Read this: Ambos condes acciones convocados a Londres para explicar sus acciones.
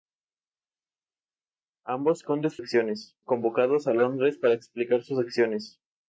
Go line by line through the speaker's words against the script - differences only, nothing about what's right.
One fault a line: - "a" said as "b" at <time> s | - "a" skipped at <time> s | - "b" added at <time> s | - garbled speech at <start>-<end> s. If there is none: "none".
none